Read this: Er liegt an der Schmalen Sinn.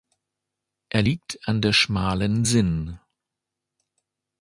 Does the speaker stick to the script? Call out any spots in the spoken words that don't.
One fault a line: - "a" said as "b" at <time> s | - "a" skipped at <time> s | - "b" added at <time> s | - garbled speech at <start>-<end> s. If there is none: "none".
none